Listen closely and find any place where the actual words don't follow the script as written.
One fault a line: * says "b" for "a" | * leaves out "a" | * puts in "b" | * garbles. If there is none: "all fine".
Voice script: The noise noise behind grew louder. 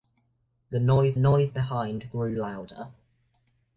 all fine